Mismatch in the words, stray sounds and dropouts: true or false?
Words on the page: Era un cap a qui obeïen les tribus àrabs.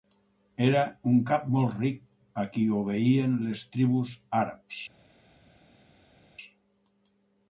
true